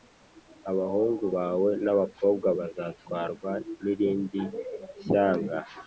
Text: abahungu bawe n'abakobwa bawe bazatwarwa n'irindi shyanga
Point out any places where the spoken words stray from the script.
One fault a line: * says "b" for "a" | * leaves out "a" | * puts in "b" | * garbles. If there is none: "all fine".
* leaves out "bawe"